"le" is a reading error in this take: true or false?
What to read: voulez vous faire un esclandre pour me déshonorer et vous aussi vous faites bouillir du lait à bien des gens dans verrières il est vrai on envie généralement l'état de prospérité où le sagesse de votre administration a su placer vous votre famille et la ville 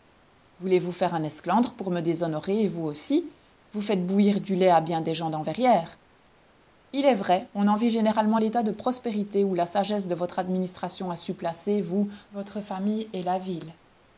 true